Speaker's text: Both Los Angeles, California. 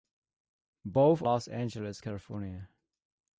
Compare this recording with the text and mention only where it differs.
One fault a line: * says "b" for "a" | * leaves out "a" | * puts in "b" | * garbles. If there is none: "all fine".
all fine